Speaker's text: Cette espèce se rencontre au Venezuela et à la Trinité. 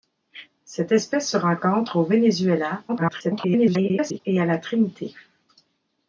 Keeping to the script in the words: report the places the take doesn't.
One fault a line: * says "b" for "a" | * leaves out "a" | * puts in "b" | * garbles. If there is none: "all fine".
* garbles